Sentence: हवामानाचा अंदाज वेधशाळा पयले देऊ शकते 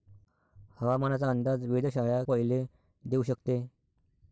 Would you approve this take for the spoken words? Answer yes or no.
yes